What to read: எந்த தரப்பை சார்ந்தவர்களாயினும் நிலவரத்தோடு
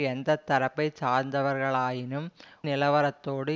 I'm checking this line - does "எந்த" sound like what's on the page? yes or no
yes